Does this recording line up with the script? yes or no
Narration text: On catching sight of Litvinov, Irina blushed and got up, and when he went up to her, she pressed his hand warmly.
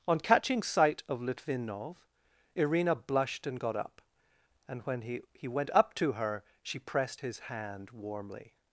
no